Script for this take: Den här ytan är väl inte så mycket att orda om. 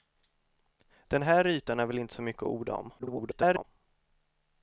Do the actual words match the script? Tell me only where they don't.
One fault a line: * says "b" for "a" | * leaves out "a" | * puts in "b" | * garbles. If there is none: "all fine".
* garbles